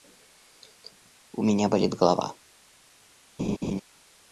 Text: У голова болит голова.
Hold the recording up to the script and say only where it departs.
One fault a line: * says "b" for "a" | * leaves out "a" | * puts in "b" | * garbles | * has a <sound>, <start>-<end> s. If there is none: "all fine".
* says "меня" for "голова"
* has a laugh, 3.4-3.8 s